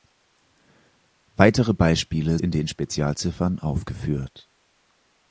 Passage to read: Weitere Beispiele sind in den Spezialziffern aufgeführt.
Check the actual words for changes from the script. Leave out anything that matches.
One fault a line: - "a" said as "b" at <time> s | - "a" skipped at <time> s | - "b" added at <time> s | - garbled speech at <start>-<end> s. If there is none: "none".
- "sind" skipped at 2.4 s